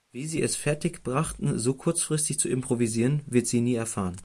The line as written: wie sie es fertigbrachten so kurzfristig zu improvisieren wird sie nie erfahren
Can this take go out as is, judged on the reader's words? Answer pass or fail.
pass